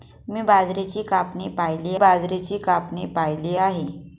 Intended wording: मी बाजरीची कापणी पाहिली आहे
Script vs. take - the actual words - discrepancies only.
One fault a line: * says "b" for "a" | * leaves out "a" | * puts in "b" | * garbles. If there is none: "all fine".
* puts in "बाजरीची कापणी पाहिली"